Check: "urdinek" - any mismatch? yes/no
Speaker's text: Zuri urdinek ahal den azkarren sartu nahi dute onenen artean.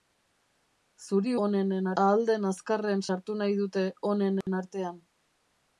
yes